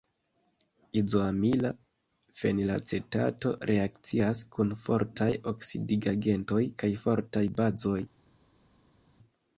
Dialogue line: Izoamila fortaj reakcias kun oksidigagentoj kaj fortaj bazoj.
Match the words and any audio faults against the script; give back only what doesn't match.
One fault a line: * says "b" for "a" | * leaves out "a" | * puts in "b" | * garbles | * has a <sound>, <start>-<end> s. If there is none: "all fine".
* says "fenilacetato" for "fortaj"
* puts in "fortaj"